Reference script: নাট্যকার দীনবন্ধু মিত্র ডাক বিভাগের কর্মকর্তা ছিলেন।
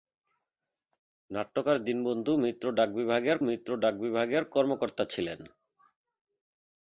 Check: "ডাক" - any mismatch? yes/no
no